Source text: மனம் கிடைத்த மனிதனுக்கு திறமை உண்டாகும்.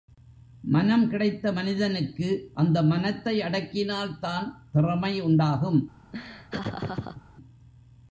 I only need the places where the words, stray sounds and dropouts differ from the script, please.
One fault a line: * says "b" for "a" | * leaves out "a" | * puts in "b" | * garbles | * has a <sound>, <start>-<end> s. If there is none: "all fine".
* puts in "அந்த மனத்தை அடக்கினால்தான்"
* has a laugh, 6.1-7.2 s